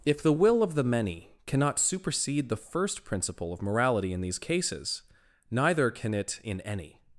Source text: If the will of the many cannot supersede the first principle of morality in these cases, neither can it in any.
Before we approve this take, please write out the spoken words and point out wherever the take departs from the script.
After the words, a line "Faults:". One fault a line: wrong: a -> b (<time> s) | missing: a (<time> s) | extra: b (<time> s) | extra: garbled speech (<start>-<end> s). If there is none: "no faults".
If the will of the many cannot supersede the first principle of morality in these cases, neither can it in any.
Faults:
no faults